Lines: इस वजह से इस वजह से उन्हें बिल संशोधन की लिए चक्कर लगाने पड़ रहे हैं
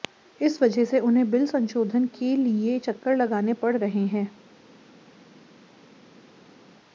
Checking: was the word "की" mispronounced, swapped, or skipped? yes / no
yes